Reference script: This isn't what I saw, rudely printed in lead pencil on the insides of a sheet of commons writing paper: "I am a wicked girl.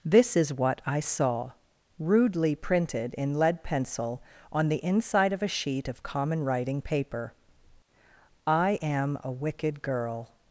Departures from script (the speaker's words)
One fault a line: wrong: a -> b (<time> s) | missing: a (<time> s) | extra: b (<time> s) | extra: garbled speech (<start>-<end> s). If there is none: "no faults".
wrong: isn't -> is (0.3 s)
wrong: insides -> inside (4.8 s)
wrong: commons -> common (6.0 s)